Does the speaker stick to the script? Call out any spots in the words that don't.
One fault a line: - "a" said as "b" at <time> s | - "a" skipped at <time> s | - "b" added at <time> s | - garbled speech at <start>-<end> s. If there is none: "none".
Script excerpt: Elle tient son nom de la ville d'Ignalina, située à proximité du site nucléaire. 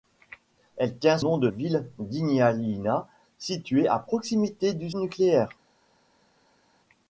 - "son" skipped at 1.2 s
- "la" skipped at 1.5 s
- "site" skipped at 4.9 s